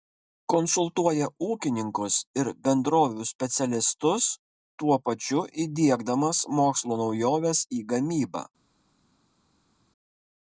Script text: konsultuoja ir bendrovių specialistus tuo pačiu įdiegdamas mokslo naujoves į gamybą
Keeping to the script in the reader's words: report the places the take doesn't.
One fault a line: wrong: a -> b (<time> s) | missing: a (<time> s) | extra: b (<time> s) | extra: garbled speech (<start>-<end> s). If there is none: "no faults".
extra: ūkininkus (1.5 s)